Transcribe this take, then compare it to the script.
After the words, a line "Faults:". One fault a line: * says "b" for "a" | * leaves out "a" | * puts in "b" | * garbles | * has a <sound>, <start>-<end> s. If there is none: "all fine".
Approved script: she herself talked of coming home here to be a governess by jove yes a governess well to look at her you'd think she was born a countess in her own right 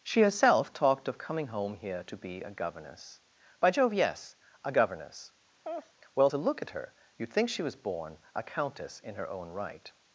she herself talked of coming home here to be a governess by jove yes a governess well to look at her you'd think she was born a countess in her own right
Faults:
* has a laugh, 5.6-5.9 s